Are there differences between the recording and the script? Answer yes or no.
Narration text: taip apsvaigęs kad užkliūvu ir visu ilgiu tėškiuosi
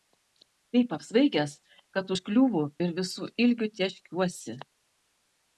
no